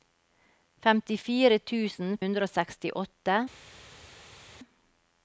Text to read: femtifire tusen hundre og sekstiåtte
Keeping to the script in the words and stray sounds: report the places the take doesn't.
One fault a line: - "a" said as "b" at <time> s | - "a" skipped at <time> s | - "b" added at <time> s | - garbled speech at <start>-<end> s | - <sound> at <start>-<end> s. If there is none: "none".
none